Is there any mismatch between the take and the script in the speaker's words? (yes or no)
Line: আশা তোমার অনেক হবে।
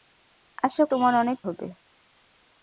no